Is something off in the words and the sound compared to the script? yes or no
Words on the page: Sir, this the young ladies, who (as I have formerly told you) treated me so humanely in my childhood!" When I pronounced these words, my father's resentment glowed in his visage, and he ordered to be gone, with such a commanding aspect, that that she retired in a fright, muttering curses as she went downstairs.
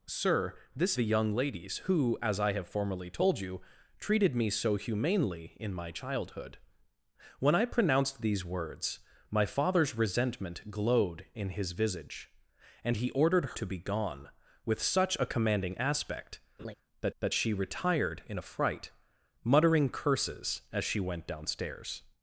yes